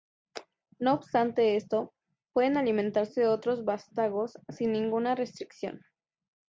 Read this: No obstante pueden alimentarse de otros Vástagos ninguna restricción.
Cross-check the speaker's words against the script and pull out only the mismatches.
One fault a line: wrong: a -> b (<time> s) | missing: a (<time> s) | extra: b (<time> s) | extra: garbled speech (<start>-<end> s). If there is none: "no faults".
extra: esto (1.5 s)
extra: sin (4.5 s)